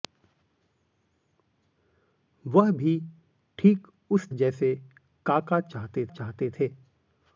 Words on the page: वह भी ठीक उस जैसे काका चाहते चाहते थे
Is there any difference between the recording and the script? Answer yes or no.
no